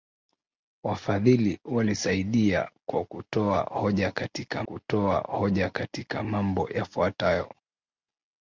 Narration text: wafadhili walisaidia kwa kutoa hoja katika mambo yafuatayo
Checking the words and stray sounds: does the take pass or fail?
fail